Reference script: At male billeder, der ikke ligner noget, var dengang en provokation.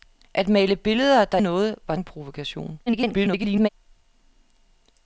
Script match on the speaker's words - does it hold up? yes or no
no